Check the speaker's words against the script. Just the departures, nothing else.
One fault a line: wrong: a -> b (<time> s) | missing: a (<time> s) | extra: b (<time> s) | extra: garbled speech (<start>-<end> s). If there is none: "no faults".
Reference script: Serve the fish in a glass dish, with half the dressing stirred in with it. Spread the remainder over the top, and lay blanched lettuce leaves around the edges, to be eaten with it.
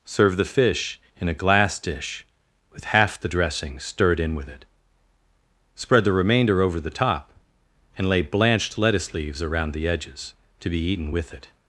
no faults